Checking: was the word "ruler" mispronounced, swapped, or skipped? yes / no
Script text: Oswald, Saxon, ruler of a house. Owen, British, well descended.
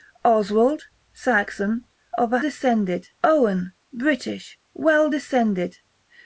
yes